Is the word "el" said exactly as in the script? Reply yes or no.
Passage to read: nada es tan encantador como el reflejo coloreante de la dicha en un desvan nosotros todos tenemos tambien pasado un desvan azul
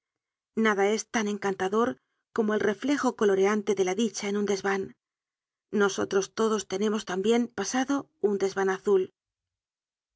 yes